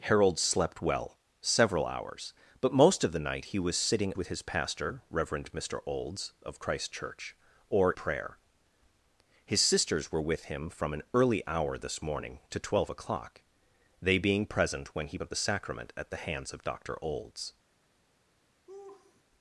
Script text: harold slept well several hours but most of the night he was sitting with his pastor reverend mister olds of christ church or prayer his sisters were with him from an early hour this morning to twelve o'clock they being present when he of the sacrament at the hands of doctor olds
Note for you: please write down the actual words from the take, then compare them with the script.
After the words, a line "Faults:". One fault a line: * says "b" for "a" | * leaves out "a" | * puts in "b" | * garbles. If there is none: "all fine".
harold slept well several hours but most of the night he was sitting with his pastor reverend mister olds of christ church or prayer his sisters were with him from an early hour this morning to twelve o'clock they being present when he of the sacrament at the hands of doctor olds
Faults:
all fine